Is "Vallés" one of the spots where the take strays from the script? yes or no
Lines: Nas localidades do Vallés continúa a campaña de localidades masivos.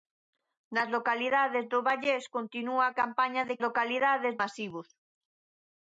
no